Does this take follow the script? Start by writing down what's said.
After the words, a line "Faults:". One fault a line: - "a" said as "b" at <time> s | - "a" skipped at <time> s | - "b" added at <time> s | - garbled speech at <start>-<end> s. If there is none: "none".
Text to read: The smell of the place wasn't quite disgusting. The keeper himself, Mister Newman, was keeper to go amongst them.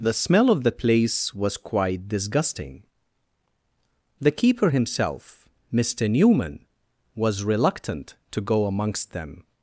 The smell of the place was quite disgusting. The keeper himself, Mister Newman, was reluctant to go amongst them.
Faults:
- "wasn't" said as "was" at 1.4 s
- "keeper" said as "reluctant" at 7.4 s